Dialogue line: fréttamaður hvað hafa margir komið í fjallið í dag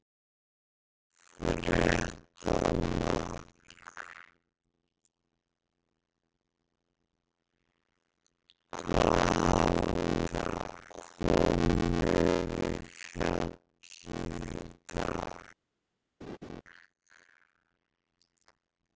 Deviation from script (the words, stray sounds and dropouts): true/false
true